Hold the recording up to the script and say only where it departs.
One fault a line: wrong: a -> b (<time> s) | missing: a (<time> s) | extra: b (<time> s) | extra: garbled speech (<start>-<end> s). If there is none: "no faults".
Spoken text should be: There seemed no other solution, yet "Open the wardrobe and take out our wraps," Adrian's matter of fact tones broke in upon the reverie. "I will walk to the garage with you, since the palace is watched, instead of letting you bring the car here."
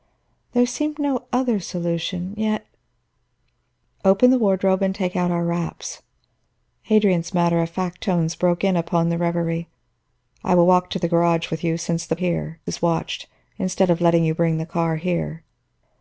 wrong: palace -> here (12.1 s)